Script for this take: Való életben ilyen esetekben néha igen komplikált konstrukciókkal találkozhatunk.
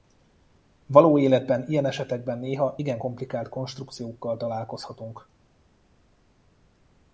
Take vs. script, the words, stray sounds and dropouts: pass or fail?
pass